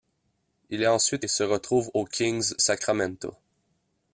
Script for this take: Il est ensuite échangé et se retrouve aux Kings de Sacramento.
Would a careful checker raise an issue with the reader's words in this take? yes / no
yes